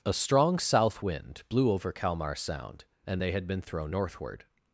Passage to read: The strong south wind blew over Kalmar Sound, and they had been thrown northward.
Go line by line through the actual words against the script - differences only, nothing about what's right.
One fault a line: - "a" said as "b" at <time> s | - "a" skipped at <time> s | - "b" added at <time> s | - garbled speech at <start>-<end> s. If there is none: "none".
- "The" said as "A" at 0.0 s